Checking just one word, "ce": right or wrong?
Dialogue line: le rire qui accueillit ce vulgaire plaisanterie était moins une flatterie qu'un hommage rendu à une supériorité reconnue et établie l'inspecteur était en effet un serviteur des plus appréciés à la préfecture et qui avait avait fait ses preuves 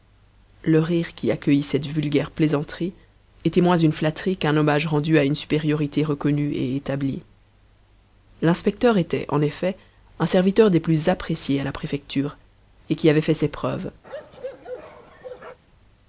wrong